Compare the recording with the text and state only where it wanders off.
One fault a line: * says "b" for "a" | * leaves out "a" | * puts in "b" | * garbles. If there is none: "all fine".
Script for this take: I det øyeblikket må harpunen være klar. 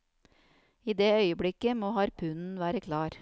all fine